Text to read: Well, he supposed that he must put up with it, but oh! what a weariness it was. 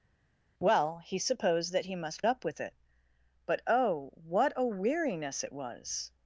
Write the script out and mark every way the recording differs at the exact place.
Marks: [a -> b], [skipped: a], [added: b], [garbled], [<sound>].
Well, he supposed that he must [skipped: put] up with it, but oh! what a weariness it was.